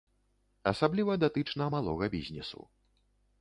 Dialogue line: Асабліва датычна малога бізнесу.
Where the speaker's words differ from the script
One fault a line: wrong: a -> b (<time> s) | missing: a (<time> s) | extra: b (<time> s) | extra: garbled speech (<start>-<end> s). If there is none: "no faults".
no faults